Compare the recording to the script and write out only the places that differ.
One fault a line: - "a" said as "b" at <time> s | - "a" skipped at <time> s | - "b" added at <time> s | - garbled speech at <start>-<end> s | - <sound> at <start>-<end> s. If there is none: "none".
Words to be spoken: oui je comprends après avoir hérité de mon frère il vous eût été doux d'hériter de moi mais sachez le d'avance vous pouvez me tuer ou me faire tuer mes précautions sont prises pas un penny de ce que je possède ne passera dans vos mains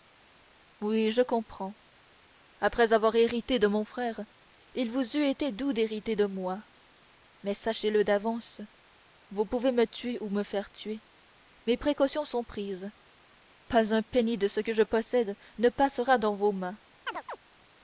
- chirp at 17.1-17.4 s